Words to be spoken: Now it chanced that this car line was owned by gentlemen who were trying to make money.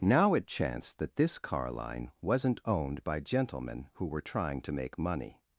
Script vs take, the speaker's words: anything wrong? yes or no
yes